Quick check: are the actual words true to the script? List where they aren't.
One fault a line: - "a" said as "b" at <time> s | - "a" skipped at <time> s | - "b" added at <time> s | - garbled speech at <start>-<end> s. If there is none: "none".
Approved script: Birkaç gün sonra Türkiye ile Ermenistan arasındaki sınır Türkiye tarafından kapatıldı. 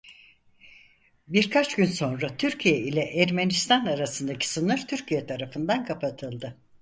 none